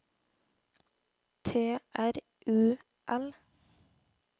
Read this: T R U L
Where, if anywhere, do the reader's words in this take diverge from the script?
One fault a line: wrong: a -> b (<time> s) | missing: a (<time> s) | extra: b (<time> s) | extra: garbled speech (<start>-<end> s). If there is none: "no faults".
no faults